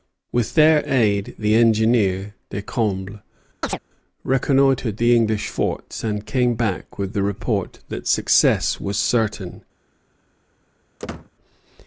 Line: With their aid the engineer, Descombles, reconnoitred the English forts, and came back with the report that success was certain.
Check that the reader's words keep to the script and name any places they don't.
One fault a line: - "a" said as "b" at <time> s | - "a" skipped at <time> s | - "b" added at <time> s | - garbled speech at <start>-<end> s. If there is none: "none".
none